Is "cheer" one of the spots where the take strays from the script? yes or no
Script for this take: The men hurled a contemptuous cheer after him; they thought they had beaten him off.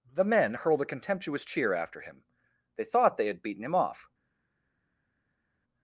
no